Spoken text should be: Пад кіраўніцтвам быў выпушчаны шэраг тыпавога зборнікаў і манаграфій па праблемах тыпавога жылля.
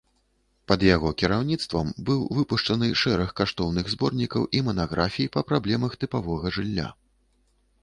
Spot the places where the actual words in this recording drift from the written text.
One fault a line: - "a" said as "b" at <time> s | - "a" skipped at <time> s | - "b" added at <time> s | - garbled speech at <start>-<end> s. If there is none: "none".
- "яго" added at 0.8 s
- "тыпавога" said as "каштоўных" at 3.4 s